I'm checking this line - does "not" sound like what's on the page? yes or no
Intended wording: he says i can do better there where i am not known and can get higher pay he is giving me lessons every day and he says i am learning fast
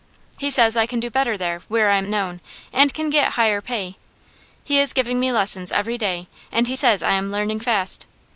no